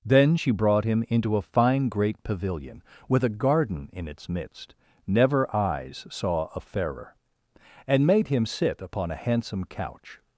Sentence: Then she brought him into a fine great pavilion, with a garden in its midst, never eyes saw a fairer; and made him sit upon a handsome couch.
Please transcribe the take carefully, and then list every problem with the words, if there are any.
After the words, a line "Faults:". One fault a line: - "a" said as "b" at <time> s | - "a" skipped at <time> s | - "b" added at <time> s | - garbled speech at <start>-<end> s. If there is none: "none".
Then she brought him into a fine great pavilion, with a garden in its midst, never eyes saw a fairer; and made him sit upon a handsome couch.
Faults:
none